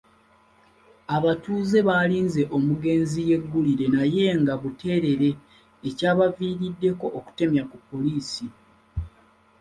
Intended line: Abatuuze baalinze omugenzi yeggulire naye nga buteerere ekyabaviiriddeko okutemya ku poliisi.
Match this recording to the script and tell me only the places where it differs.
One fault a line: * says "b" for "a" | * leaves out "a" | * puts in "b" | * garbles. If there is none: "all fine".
all fine